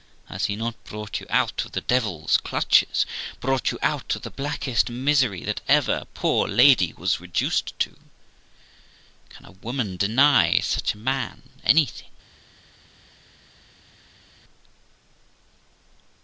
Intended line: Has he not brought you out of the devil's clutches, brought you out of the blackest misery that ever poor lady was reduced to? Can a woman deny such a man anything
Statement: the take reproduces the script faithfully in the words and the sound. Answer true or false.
true